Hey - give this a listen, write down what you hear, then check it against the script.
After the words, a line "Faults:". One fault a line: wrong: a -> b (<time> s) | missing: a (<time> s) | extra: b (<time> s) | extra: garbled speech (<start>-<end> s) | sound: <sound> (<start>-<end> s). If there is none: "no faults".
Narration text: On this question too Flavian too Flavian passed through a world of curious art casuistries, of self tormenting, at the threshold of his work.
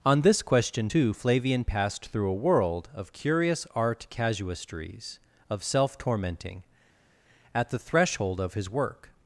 On this question too Flavian passed through a world of curious art casuistries, of self tormenting, at the threshold of his work.
Faults:
missing: too Flavian (1.6 s)